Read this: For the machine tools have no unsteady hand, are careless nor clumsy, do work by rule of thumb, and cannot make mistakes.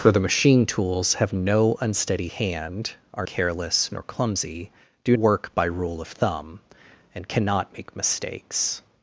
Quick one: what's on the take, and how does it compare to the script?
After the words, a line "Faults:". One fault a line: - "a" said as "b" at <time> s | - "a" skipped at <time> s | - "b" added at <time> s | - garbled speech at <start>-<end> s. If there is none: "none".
For the machine tools have no unsteady hand, are careless nor clumsy, do work by rule of thumb, and cannot make mistakes.
Faults:
none